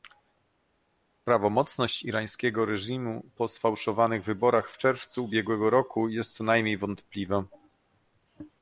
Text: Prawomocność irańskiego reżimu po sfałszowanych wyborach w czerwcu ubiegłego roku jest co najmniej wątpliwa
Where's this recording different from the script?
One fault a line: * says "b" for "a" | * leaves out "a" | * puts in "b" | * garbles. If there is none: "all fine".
all fine